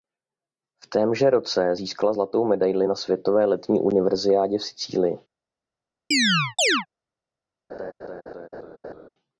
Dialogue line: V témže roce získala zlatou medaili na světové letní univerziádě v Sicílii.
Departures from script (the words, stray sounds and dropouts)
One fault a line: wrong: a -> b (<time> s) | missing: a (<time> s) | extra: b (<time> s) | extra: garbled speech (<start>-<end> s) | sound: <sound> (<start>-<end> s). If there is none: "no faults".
sound: chirp (6.1-6.9 s)
sound: laugh (7.7-9.1 s)